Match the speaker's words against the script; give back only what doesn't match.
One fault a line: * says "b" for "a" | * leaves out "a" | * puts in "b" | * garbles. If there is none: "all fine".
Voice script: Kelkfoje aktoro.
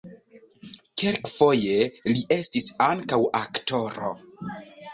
* puts in "li estis ankaŭ"